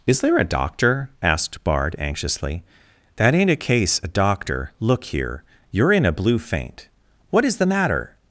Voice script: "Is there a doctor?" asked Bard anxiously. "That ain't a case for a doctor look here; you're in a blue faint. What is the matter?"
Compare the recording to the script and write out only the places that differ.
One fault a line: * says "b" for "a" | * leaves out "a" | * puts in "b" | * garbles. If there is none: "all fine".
* leaves out "for"